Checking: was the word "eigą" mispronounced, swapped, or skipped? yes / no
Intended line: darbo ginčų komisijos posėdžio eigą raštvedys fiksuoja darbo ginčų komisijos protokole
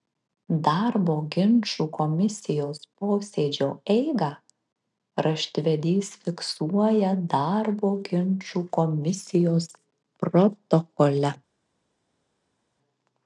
no